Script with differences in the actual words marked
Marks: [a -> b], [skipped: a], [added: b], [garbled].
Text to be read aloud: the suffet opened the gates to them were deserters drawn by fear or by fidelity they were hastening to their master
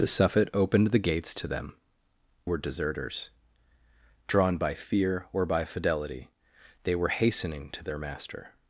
the suffet opened the gates to them were deserters drawn by fear or by fidelity they were hastening to their master